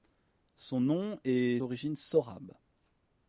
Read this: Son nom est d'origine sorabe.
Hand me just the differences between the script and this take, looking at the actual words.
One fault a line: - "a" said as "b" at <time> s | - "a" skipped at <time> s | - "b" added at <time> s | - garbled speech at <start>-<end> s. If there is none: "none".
none